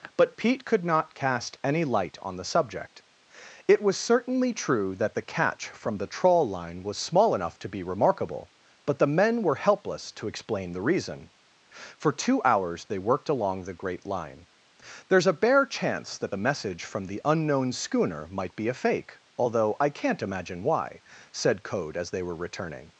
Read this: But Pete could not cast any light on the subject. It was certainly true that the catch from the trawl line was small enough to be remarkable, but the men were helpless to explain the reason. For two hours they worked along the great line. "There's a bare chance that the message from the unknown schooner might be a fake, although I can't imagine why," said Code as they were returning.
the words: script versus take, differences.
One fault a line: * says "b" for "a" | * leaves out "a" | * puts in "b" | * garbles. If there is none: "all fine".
all fine